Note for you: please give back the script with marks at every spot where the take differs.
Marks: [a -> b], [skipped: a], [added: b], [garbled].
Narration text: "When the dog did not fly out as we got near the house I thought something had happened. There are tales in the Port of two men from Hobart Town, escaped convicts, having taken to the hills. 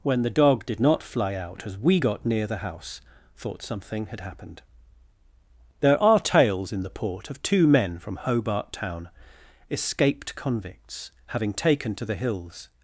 "When the dog did not fly out as we got near the house [skipped: I] thought something had happened. There are tales in the Port of two men from Hobart Town, escaped convicts, having taken to the hills.